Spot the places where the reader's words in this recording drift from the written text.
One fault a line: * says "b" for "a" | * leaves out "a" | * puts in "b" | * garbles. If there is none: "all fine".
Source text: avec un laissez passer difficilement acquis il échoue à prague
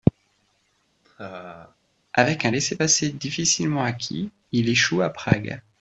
all fine